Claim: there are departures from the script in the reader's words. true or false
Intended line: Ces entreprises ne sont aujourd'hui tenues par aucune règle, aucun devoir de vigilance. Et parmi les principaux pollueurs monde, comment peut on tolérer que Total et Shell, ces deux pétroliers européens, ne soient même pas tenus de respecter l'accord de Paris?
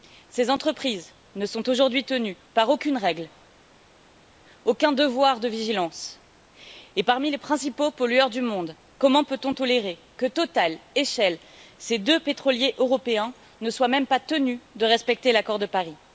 true